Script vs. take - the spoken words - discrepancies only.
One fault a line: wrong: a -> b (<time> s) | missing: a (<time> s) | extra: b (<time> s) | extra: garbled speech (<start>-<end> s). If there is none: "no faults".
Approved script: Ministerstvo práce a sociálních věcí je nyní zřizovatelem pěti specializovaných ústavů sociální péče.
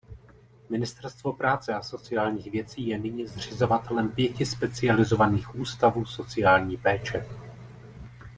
no faults